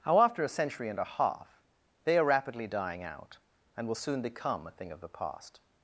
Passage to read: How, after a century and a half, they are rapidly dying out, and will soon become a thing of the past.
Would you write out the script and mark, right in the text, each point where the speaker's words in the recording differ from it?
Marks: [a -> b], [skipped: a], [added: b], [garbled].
How, after a century and a half, they are rapidly dying out, and will soon become a thing of the past.